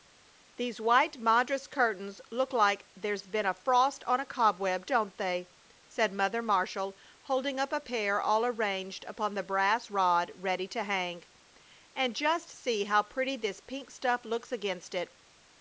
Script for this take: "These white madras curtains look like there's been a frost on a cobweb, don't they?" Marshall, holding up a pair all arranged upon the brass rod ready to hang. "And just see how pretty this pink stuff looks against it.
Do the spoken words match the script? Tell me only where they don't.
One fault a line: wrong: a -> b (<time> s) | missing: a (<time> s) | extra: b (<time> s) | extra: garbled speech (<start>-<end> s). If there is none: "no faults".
extra: said Mother (5.9 s)